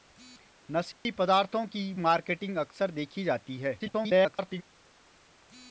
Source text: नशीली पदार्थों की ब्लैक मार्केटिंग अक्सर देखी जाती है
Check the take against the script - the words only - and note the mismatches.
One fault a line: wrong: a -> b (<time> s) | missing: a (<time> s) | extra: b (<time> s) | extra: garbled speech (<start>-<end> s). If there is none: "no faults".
missing: ब्लैक (1.9 s)
extra: garbled speech (3.8-4.6 s)